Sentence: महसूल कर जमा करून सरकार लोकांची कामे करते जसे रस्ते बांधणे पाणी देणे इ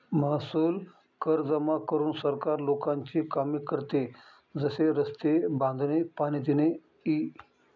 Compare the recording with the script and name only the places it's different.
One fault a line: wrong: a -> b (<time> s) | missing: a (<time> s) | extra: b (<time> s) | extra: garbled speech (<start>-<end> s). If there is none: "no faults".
no faults